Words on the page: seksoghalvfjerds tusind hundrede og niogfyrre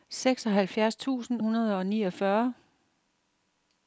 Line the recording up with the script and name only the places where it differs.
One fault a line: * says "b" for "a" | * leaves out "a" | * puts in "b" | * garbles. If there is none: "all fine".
all fine